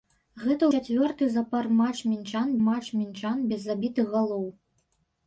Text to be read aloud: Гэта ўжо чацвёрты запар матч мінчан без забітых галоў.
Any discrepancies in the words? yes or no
yes